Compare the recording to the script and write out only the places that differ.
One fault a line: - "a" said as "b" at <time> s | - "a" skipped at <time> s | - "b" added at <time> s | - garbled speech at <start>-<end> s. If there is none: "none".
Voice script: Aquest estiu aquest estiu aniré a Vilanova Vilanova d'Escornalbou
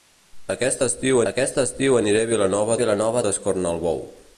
none